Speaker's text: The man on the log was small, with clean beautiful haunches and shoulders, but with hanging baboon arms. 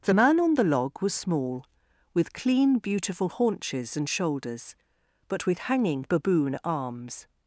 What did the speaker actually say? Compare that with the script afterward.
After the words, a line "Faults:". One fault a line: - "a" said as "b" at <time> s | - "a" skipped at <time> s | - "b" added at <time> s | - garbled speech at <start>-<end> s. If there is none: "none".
The man on the log was small, with clean beautiful haunches and shoulders, but with hanging baboon arms.
Faults:
none